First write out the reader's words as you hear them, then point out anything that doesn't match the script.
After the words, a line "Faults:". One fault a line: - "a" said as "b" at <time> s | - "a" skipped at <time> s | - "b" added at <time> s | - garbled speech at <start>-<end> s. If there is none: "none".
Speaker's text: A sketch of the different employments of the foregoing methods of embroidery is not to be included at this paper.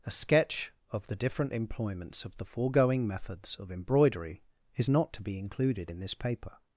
A sketch of the different employments of the foregoing methods of embroidery is not to be included in this paper.
Faults:
- "at" said as "in" at 5.9 s